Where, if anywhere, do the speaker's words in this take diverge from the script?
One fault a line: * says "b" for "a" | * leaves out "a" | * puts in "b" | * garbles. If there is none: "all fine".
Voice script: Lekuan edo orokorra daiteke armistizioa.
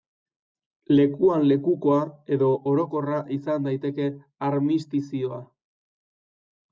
* puts in "lekukoa"
* puts in "izan"